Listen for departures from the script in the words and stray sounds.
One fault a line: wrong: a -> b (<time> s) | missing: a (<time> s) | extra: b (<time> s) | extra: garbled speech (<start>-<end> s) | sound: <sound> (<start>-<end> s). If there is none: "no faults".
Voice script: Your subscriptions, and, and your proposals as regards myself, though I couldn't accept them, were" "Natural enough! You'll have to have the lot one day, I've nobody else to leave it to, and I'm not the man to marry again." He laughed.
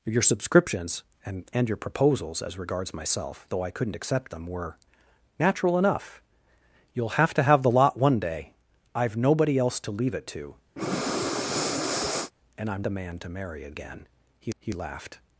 sound: breath (10.8-12.3 s)
missing: not (12.8 s)
extra: he (14.6 s)